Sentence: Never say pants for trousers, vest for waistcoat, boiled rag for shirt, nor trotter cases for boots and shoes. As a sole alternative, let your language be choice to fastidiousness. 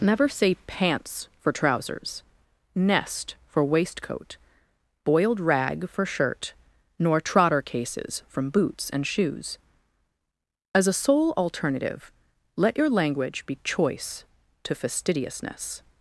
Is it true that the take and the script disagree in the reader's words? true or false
true